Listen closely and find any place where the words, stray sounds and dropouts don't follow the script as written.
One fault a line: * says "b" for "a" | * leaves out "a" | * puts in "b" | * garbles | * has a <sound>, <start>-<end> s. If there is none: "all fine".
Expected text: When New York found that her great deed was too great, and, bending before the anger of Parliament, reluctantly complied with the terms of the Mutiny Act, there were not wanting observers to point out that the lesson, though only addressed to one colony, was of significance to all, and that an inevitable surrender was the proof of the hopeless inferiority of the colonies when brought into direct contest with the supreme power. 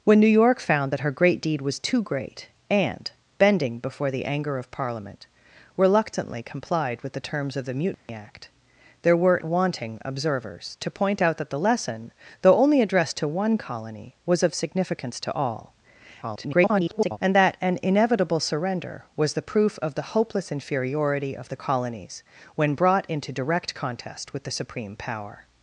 * has a dropout, 7.9-8.1 s
* leaves out "not"
* garbles